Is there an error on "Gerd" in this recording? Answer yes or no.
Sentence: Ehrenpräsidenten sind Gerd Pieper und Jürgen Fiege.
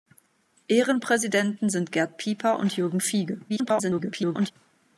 no